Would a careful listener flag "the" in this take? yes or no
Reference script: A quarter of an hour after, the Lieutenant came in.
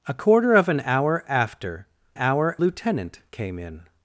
yes